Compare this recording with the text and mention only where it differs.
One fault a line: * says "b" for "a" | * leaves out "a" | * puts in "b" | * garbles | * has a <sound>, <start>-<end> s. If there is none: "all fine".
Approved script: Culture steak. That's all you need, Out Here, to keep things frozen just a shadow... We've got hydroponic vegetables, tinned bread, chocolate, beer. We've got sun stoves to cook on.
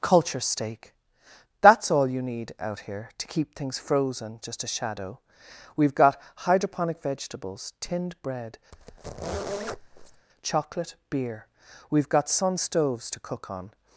* has a squeak, 8.7-10.3 s